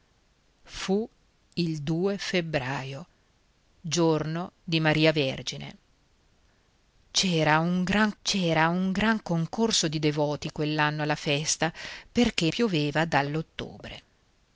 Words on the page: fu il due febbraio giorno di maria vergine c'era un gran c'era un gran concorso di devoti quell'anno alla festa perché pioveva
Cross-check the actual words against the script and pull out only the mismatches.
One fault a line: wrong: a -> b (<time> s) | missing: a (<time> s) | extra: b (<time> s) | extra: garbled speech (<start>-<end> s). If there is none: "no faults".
no faults